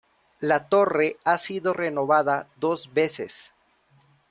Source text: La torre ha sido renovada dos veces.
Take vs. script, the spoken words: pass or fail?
pass